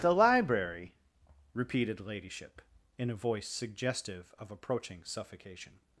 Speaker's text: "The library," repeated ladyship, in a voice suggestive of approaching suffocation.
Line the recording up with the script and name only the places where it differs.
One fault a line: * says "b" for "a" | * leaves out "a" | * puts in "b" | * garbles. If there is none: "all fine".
all fine